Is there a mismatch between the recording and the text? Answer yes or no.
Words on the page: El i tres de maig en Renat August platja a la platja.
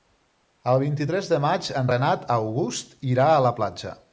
yes